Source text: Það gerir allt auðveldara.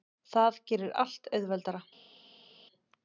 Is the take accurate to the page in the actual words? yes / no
yes